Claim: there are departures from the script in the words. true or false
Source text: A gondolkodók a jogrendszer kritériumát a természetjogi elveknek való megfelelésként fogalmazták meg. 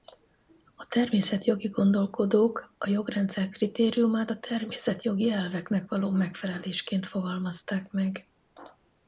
true